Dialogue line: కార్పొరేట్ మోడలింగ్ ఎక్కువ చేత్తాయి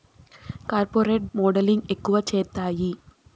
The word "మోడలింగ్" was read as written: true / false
true